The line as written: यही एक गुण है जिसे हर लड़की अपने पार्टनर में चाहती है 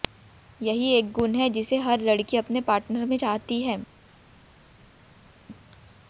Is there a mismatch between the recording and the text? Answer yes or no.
no